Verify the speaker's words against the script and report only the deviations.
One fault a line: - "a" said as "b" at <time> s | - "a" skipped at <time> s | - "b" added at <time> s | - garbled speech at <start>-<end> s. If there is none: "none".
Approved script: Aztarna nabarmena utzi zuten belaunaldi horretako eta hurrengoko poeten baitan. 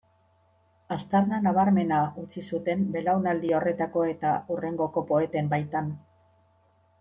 none